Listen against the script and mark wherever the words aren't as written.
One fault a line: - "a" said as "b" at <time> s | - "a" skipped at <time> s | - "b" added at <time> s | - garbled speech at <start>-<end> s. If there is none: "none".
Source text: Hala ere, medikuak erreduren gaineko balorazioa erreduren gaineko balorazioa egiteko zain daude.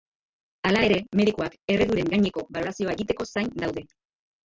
- "erreduren gaineko balorazioa" skipped at 3.0 s